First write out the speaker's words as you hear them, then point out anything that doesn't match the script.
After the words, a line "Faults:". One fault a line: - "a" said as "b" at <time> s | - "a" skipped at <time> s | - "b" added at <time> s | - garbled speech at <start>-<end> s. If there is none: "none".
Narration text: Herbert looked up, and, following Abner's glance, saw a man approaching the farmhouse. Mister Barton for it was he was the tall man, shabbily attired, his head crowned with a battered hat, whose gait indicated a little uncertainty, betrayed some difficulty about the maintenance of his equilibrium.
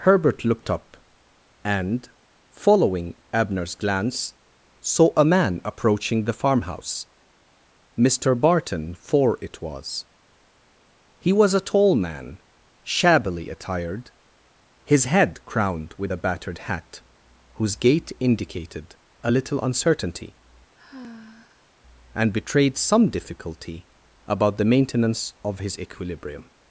Herbert looked up, and, following Abner's glance, saw a man approaching the farmhouse. Mister Barton for it was he was a tall man, shabbily attired, his head crowned with a battered hat, whose gait indicated a little uncertainty, and betrayed some difficulty about the maintenance of his equilibrium.
Faults:
- "the" said as "a" at 11.5 s
- "and" added at 22.1 s